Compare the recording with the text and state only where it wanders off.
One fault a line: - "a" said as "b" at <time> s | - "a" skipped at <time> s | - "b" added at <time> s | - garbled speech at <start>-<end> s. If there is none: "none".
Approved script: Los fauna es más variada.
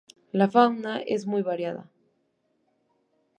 - "Los" said as "La" at 0.3 s
- "más" said as "muy" at 1.3 s